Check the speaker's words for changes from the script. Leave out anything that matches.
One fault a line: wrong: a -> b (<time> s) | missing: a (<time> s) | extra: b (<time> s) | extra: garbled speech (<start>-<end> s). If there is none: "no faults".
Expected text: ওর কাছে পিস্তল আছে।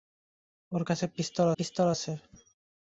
extra: পিস্তল (1.6 s)